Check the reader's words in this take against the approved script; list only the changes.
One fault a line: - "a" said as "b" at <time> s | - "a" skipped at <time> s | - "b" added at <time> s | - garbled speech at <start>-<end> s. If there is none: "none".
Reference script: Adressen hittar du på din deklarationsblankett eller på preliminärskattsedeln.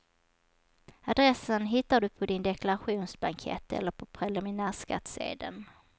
none